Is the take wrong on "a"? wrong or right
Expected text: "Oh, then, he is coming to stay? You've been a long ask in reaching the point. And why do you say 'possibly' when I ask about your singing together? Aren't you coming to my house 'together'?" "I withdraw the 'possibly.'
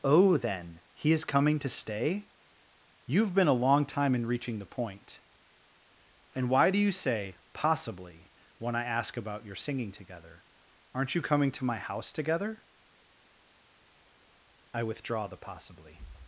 right